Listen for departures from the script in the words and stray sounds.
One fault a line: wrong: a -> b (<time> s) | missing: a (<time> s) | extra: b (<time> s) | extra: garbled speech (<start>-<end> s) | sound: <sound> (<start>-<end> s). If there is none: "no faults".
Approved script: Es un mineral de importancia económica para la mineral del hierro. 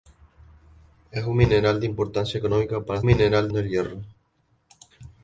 no faults